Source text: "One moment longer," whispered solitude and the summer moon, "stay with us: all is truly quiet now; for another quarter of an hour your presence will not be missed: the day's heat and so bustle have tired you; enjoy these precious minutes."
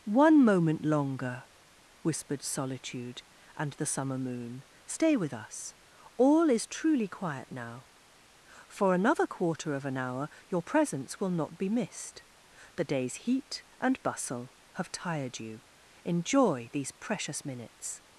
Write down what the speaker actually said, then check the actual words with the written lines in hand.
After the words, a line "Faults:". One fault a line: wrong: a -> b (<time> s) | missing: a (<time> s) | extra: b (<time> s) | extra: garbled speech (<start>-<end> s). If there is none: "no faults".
"One moment longer," whispered solitude and the summer moon, "stay with us: all is truly quiet now; for another quarter of an hour your presence will not be missed: the day's heat and bustle have tired you; enjoy these precious minutes."
Faults:
missing: so (14.0 s)